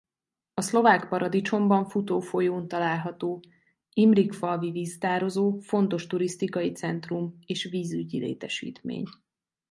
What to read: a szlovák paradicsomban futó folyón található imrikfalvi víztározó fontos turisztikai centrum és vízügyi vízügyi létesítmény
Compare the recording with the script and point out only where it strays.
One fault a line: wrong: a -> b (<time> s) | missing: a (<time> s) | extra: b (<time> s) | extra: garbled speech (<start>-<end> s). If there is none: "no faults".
missing: vízügyi (8.2 s)